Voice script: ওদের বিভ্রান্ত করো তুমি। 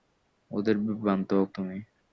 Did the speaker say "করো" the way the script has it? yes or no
no